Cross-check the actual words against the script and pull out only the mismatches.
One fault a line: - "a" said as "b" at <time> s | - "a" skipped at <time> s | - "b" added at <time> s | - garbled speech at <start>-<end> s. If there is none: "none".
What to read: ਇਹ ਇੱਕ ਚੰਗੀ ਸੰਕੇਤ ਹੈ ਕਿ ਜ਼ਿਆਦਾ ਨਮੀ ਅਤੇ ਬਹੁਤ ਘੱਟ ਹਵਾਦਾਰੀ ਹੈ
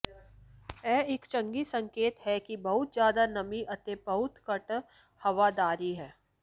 - "ਬਹੁਤ" added at 2.6 s